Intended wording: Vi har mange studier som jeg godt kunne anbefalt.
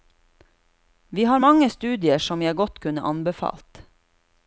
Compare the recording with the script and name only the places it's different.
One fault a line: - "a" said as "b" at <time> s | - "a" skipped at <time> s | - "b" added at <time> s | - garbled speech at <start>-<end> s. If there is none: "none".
none